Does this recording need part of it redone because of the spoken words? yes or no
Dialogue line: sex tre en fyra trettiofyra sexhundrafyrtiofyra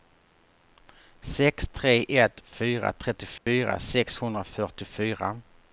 yes